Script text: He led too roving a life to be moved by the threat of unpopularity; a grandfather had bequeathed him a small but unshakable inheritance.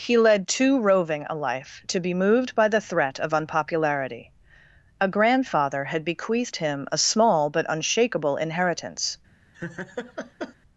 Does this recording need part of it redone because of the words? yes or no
no